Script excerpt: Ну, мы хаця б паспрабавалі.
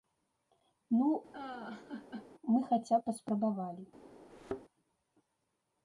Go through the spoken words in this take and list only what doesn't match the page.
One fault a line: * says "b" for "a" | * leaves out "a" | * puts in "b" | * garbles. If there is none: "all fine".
all fine